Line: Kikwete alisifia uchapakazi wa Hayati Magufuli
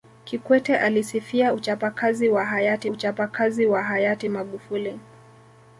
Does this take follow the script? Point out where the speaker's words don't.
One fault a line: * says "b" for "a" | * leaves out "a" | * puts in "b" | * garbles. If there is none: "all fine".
* puts in "uchapakazi wa Hayati"